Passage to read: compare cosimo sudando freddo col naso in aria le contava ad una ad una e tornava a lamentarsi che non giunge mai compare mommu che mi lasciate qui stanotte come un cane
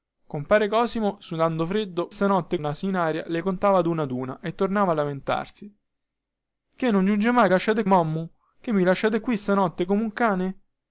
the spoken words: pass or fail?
fail